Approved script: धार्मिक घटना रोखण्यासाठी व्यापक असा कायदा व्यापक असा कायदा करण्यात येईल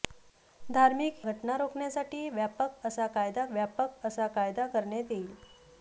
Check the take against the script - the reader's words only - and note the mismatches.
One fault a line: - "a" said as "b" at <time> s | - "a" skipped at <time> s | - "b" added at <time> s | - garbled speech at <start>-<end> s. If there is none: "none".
none